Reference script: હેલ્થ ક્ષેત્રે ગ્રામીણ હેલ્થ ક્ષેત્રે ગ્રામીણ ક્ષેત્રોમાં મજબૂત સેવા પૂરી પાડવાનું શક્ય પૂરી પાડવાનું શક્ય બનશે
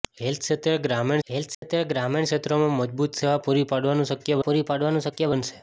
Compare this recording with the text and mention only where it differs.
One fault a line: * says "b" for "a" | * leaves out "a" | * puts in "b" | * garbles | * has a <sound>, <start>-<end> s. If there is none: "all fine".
* has a dropout, 1.5-1.6 s